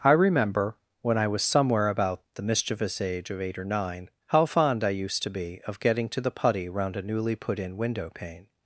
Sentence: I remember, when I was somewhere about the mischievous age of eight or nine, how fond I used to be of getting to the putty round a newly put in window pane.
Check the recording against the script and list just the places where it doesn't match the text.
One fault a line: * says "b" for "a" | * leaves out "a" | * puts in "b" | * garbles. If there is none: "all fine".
all fine